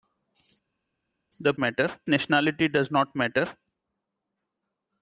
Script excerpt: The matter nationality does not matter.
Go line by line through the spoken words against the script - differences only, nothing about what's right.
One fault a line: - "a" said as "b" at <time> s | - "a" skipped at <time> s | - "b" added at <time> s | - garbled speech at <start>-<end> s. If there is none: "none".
none